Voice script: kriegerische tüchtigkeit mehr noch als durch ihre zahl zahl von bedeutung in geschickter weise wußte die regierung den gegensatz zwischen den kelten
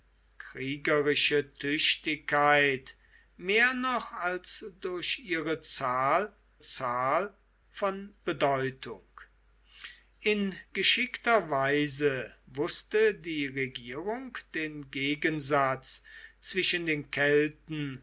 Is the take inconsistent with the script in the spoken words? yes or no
no